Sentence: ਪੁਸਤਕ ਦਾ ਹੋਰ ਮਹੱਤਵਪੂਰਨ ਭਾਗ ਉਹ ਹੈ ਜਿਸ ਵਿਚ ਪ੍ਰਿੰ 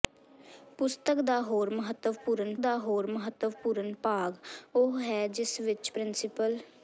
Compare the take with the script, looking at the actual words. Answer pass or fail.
fail